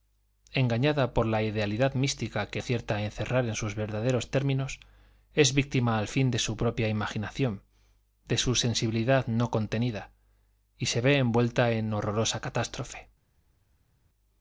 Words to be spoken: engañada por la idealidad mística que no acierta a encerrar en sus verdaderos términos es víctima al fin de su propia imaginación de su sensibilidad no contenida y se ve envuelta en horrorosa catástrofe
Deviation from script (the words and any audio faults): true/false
true